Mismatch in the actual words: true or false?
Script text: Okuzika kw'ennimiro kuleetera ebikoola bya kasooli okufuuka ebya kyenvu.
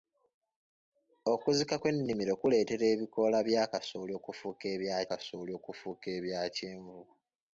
true